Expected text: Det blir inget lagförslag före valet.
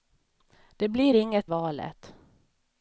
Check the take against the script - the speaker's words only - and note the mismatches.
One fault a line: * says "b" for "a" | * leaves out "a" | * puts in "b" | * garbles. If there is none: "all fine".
* leaves out "lagförslag före"